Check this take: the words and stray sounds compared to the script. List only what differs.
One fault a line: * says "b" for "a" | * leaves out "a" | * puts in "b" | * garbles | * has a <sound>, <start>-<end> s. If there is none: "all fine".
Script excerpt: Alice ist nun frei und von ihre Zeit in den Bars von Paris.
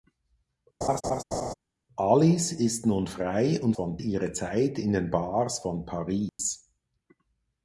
* has a laugh, 0.8-1.5 s
* has a dropout, 6.3-6.4 s